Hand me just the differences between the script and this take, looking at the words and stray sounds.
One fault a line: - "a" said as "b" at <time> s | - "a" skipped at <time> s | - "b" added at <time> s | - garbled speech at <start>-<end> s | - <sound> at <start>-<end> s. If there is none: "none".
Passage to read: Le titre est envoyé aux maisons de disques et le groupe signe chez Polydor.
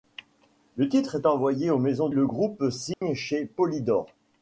- "de disques et" skipped at 2.1 s
- dropout at 2.9-3.0 s